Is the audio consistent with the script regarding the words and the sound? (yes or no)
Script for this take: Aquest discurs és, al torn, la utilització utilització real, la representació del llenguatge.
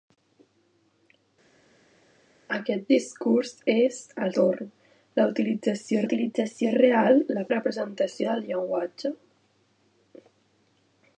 yes